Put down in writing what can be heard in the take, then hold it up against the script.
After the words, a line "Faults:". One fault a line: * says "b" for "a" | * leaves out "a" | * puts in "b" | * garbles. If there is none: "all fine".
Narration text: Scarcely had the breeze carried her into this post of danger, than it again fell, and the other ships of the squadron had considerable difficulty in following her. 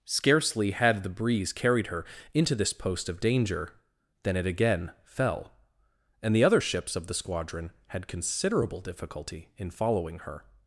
Scarcely had the breeze carried her into this post of danger, than it again fell, and the other ships of the squadron had considerable difficulty in following her.
Faults:
all fine